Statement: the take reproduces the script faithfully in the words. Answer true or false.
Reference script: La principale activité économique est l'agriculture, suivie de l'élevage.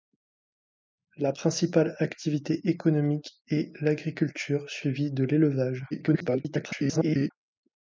false